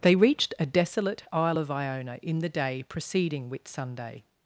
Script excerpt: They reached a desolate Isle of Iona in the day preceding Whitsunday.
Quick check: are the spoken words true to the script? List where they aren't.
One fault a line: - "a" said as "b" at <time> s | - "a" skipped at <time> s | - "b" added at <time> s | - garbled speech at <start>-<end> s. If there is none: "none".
none